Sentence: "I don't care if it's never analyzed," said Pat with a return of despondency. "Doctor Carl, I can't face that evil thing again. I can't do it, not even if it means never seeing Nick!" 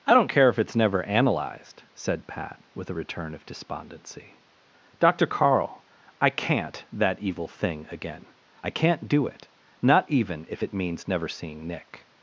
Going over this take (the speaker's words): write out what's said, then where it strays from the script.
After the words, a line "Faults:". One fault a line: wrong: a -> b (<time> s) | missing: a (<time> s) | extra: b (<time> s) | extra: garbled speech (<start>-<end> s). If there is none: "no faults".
"I don't care if it's never analyzed," said Pat with a return of despondency. "Doctor Carl, I can't that evil thing again. I can't do it, not even if it means never seeing Nick!"
Faults:
missing: face (6.8 s)